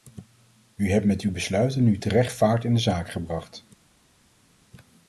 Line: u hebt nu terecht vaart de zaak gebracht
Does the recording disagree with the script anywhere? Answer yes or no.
yes